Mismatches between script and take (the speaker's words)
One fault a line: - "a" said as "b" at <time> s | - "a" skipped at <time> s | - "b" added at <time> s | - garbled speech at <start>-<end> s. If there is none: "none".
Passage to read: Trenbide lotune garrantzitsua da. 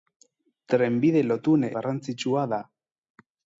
none